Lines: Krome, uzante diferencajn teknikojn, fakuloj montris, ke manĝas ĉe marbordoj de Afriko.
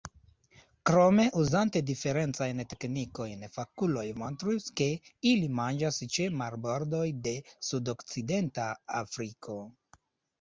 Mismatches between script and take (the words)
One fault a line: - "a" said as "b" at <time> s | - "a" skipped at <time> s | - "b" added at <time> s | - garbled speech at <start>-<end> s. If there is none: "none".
- "ili" added at 5.3 s
- "sudokcidenta" added at 7.7 s